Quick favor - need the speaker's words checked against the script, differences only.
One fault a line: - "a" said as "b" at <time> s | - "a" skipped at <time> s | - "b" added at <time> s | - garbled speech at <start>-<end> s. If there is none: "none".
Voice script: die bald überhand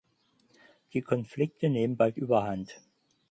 - "konflikte nehmen" added at 1.0 s